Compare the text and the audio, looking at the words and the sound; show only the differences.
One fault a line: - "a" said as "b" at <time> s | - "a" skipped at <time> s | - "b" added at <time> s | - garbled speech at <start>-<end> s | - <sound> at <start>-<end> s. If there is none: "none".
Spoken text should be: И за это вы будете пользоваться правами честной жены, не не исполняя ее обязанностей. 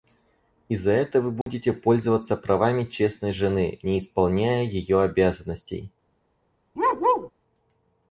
- dropout at 1.4-1.5 s
- "не" skipped at 4.0 s
- bark at 6.8-7.3 s